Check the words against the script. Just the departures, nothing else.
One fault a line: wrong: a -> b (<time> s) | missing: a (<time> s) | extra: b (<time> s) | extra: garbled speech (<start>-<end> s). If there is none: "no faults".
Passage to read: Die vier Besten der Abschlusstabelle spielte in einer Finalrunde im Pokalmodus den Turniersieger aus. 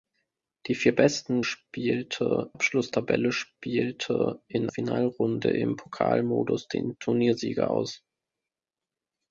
wrong: der -> spielte (1.4 s)
missing: einer (4.7 s)